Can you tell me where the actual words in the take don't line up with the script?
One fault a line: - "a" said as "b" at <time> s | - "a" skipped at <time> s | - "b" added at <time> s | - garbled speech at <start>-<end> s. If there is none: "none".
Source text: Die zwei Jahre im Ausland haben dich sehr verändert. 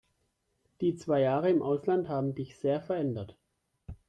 none